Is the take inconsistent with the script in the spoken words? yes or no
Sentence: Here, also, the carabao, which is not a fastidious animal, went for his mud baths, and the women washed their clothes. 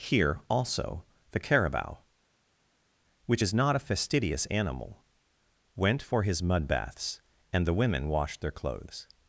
no